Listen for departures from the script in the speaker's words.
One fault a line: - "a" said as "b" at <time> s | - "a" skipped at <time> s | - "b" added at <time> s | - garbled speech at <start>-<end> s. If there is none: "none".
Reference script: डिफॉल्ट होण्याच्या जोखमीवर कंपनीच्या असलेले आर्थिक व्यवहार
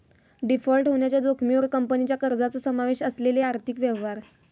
- "कर्जाचो समावेश" added at 2.2 s